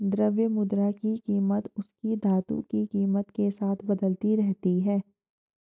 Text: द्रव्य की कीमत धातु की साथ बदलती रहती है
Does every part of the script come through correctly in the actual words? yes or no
no